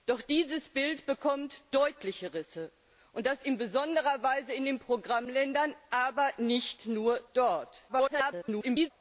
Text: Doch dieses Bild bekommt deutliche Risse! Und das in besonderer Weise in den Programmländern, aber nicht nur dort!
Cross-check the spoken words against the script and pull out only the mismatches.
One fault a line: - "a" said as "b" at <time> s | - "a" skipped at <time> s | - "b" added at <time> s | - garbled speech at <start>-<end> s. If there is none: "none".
- garbled speech at 7.9-8.9 s